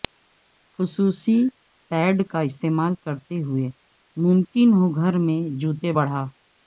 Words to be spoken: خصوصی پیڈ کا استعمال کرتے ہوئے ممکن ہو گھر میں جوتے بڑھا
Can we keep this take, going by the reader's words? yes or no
yes